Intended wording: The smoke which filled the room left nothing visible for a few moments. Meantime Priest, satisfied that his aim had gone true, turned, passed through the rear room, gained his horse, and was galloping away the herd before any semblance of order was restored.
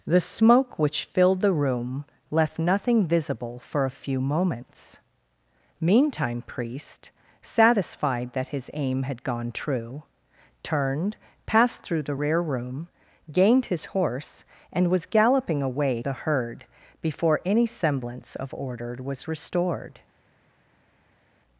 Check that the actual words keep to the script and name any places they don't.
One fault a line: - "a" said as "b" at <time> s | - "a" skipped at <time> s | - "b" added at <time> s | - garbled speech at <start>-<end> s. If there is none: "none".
none